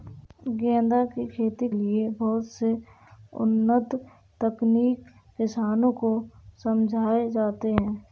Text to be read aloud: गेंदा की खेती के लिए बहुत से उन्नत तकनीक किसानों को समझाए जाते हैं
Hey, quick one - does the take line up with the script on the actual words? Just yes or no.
no